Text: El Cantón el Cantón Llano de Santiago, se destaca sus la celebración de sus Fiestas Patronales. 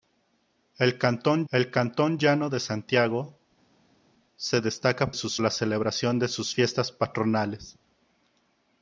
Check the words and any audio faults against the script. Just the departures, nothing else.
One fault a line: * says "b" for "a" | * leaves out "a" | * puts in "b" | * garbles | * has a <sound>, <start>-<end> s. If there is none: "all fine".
all fine